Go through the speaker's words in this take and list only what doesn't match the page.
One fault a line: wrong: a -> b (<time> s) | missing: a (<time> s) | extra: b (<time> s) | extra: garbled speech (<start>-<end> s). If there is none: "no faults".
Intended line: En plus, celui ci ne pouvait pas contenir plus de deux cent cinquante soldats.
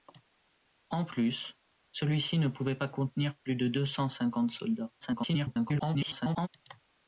extra: garbled speech (5.0-6.5 s)